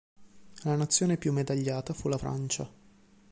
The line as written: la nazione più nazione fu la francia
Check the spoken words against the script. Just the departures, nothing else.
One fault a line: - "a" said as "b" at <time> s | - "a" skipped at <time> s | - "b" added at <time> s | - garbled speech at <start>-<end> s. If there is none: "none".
- "nazione" said as "medagliata" at 1.3 s